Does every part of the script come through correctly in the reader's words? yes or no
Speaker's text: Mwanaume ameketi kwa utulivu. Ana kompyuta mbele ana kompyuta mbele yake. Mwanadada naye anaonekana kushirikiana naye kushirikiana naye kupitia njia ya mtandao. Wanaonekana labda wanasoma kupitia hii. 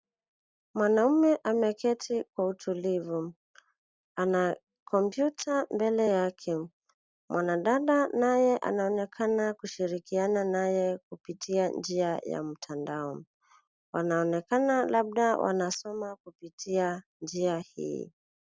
no